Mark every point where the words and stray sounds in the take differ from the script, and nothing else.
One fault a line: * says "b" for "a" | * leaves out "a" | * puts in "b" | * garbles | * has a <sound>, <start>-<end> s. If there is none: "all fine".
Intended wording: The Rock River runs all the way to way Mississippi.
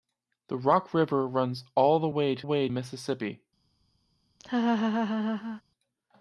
* has a laugh, 4.4-5.6 s